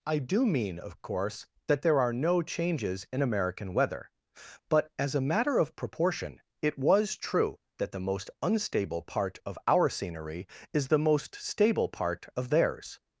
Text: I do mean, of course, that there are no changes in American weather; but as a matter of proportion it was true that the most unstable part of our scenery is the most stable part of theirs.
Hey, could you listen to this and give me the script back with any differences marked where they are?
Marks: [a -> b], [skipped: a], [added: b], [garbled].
I do mean, of course, that there are no changes in American weather; but as a matter of proportion it was true that the most unstable part of our scenery is the most stable part of theirs.